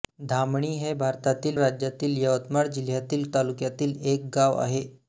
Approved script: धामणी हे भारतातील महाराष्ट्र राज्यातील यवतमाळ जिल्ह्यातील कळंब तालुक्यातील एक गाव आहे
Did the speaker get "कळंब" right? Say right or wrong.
wrong